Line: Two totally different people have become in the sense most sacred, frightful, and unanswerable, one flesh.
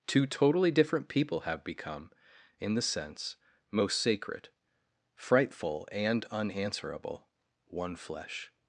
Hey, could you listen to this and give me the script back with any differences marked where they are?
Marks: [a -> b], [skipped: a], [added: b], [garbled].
Two totally different people have become in the sense most sacred, frightful, and unanswerable, one flesh.